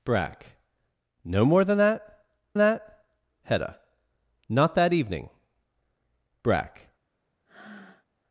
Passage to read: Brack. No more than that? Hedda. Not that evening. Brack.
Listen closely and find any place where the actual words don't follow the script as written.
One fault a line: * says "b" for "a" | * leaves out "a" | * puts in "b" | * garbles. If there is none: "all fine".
* puts in "that"